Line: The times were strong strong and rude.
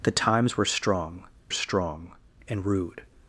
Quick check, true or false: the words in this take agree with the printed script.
true